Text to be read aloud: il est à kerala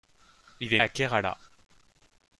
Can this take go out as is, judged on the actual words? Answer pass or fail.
pass